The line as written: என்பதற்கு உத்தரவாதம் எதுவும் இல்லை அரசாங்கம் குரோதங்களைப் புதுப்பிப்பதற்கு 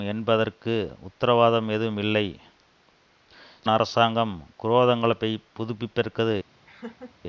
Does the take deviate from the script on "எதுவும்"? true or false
false